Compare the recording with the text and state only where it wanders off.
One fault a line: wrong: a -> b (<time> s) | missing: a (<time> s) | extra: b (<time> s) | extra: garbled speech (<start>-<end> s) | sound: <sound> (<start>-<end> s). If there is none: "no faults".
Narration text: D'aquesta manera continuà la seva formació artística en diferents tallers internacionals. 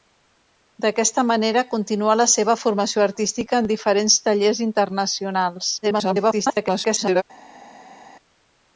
extra: garbled speech (5.8-7.2 s)